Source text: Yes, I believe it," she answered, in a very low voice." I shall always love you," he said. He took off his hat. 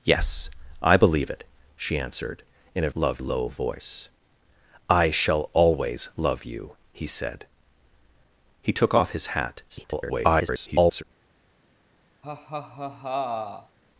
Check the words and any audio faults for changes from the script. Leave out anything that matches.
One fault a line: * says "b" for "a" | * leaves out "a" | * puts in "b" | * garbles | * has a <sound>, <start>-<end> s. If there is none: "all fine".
* says "love" for "very"
* garbles
* has a laugh, 12.2-13.8 s